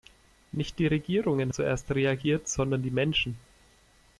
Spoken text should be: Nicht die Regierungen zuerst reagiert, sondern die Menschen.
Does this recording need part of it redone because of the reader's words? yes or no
no